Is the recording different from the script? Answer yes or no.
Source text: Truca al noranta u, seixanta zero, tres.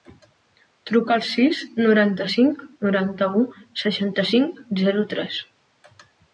yes